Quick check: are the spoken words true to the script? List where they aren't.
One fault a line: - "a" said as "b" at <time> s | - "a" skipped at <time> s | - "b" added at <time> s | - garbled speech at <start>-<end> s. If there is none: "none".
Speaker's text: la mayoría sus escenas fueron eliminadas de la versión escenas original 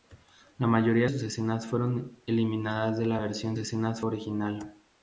none